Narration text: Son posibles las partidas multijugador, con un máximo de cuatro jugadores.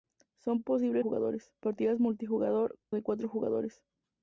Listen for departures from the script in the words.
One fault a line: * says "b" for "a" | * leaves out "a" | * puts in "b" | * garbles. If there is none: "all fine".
* says "jugadores" for "las"
* leaves out "con un máximo"